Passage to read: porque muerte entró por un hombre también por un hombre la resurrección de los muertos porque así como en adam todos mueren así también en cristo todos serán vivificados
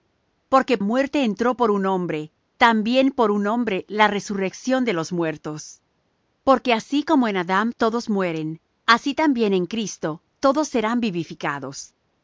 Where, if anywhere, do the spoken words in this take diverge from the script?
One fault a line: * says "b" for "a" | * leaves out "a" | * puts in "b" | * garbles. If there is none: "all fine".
all fine